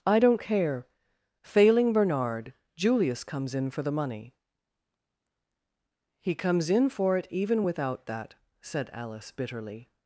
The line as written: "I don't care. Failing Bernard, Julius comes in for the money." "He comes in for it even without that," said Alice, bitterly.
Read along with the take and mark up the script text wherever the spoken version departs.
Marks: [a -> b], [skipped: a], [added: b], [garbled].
"I don't care. Failing Bernard, Julius comes in for the money." "He comes in for it even without that," said Alice, bitterly.